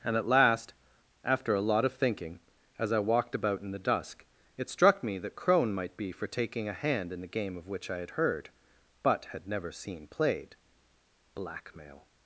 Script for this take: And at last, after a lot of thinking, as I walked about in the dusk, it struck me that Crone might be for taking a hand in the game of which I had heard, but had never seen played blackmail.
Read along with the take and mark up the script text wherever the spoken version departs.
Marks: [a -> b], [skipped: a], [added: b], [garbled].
And at last, after a lot of thinking, as I walked about in the dusk, it struck me that Crone might be for taking a hand in the game of which I had heard, but had never seen played blackmail.